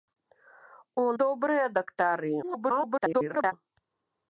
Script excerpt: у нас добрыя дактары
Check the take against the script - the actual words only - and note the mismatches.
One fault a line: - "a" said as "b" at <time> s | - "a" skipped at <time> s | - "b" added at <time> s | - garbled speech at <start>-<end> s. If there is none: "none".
- "нас" skipped at 1.1 s
- garbled speech at 2.4-3.5 s